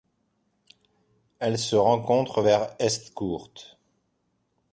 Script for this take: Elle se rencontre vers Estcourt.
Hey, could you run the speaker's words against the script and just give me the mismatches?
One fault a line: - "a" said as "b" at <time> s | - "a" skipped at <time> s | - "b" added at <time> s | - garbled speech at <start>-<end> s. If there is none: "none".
none